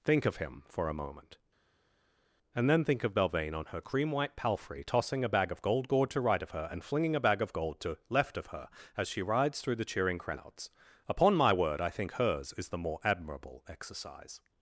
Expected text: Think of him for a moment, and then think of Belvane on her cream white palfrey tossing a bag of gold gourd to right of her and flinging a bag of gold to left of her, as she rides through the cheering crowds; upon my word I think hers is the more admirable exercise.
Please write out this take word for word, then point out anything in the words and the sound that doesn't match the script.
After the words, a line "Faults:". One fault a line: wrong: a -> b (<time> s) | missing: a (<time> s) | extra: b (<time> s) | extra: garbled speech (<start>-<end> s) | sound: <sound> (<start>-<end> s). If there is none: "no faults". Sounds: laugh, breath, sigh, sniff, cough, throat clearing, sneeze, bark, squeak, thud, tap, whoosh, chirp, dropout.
Think of him for a moment, and then think of Belvane on her cream white palfrey tossing a bag of gold gourd to right of her and flinging a bag of gold to left of her, as she rides through the cheering crowds; upon my word I think hers is the more admirable exercise.
Faults:
no faults